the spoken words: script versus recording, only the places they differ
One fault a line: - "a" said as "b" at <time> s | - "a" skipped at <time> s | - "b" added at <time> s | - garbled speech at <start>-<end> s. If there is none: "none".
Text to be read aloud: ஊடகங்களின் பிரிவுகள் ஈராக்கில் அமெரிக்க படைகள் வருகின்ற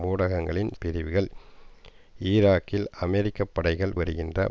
none